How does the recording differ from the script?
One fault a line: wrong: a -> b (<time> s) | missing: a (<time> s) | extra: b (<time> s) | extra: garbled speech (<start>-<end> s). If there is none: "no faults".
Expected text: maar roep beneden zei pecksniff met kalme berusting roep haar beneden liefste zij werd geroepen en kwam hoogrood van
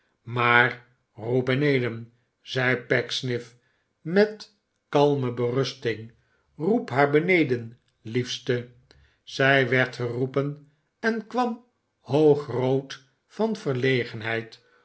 no faults